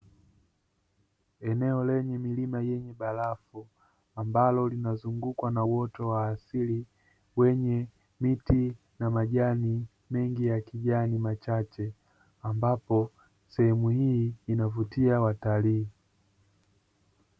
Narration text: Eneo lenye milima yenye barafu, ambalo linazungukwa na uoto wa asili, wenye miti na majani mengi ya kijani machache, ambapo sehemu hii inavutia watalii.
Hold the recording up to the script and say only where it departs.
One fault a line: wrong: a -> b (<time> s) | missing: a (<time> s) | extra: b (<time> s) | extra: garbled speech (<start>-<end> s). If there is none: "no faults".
no faults